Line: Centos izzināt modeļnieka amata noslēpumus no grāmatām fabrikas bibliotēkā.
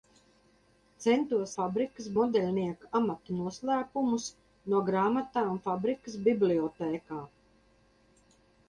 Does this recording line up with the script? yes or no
no